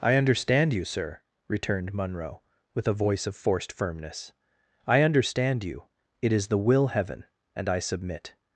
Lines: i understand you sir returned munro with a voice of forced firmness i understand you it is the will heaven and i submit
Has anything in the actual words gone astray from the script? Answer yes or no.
no